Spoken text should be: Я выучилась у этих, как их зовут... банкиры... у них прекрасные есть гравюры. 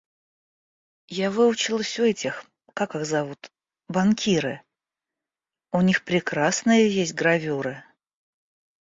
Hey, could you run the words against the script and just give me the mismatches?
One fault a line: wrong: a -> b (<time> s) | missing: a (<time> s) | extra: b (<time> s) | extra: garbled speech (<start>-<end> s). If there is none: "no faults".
no faults